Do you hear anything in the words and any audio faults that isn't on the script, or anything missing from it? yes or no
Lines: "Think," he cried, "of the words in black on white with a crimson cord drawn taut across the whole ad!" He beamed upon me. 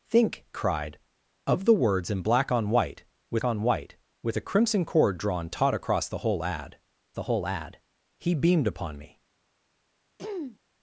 yes